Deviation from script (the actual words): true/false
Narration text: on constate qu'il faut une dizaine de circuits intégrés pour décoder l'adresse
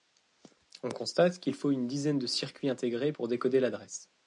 false